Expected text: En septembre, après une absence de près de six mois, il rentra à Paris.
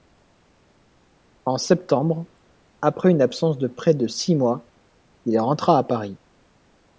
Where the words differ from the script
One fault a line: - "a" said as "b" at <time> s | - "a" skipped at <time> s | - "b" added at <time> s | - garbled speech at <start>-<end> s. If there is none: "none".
none